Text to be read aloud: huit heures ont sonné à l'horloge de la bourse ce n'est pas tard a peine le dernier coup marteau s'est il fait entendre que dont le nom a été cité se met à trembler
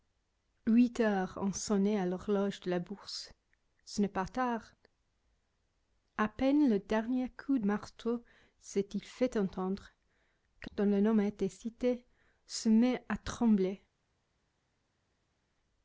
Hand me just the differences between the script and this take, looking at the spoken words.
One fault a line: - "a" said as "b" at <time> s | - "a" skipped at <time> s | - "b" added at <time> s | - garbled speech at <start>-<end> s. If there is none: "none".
none